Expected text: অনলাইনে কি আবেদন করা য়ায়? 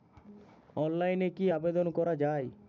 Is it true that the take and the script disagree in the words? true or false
false